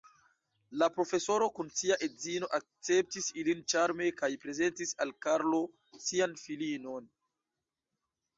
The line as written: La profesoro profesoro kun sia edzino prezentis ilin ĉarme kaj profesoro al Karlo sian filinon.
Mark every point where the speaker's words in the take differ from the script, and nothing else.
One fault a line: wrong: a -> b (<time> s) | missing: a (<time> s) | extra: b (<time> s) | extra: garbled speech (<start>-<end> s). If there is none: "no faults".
missing: profesoro (1.5 s)
wrong: prezentis -> akceptis (2.6 s)
wrong: profesoro -> prezentis (4.5 s)